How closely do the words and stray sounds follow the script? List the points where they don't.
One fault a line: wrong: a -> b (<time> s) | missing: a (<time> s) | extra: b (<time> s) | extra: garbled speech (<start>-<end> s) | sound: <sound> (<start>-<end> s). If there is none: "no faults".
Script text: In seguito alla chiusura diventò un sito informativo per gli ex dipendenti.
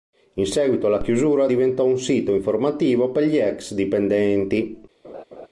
sound: laugh (5.0-5.5 s)